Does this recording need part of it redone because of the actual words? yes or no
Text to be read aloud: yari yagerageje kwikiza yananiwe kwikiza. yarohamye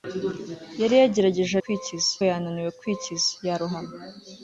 no